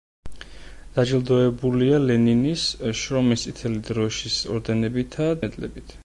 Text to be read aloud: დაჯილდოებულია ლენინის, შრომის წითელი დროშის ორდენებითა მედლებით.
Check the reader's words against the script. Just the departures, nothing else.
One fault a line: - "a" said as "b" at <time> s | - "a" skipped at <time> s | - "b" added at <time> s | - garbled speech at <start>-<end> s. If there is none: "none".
none